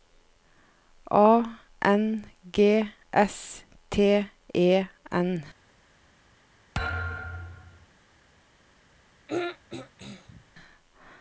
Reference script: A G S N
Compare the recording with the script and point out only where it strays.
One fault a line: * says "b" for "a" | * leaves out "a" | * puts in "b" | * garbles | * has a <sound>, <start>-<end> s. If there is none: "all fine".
* puts in "N"
* puts in "T E"
* has a thud, 6.7-7.9 s
* has a throat clearing, 9.3-10.4 s